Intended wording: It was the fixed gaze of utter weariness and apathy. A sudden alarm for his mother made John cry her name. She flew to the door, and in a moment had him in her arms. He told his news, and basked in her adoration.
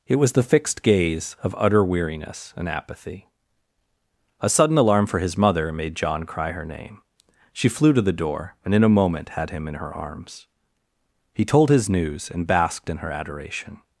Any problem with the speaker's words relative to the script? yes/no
no